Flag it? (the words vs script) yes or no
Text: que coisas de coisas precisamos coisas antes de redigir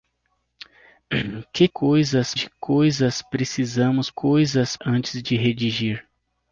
no